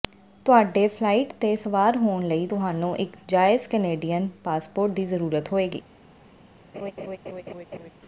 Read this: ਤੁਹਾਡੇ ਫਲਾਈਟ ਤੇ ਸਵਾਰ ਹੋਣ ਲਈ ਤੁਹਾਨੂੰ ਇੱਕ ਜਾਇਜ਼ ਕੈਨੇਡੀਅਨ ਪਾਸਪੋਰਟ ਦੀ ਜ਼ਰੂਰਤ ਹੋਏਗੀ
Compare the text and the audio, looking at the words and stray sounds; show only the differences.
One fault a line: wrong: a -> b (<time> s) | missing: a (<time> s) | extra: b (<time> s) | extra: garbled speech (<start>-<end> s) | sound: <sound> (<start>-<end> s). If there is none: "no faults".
sound: laugh (6.7-7.9 s)